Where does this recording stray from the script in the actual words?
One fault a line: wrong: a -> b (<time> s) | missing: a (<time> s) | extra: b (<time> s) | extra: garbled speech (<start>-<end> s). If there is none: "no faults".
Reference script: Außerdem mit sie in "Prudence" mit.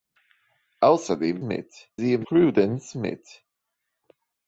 no faults